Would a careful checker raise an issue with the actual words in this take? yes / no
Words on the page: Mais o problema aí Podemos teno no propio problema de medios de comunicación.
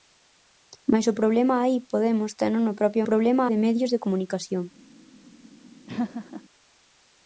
no